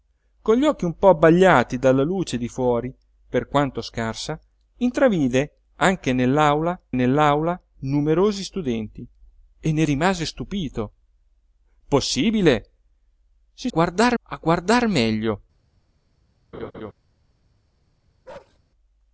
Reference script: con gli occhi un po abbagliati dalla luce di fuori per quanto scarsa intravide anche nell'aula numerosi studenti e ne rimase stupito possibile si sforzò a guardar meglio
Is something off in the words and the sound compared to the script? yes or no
yes